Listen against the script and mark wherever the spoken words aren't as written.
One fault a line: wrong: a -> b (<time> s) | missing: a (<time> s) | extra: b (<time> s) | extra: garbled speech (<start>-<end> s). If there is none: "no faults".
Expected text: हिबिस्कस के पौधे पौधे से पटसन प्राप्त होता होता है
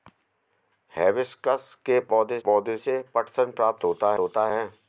no faults